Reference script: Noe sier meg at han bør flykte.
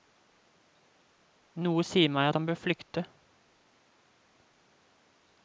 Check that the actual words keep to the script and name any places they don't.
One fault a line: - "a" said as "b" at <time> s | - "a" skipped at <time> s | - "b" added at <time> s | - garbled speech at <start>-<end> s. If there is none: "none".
none